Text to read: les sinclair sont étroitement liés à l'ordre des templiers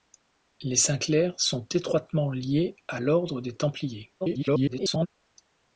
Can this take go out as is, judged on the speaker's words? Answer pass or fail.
fail